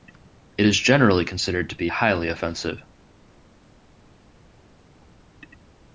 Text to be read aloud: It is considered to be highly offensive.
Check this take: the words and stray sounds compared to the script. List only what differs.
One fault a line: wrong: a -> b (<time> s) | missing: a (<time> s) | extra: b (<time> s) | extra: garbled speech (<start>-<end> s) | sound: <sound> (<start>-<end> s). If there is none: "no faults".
extra: generally (0.8 s)